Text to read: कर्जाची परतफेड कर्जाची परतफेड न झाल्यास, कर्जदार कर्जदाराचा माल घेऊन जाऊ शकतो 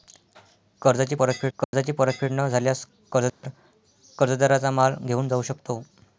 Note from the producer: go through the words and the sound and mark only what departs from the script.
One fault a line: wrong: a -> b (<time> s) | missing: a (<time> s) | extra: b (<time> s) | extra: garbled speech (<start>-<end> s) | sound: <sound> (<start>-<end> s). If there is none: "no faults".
sound: dropout (1.6-1.7 s)
sound: dropout (3.3-3.4 s)